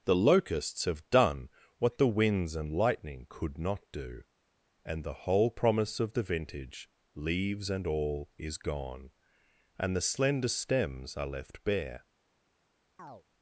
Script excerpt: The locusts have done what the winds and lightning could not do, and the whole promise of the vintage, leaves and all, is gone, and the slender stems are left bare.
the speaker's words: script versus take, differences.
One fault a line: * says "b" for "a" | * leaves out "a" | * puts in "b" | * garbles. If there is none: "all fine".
all fine